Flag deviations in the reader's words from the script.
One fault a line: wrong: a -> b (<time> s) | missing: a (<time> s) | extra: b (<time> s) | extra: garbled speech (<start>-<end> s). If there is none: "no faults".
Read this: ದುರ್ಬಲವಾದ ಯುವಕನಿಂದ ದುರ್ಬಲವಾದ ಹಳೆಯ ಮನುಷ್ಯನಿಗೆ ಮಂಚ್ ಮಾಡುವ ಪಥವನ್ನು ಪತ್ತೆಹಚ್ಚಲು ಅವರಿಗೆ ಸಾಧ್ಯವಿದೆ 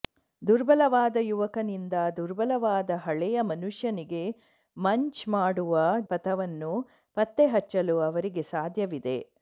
no faults